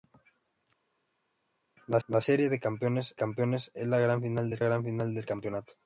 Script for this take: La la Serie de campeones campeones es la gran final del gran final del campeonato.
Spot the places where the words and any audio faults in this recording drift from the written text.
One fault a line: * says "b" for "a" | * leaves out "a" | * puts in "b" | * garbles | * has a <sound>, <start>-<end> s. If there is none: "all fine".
all fine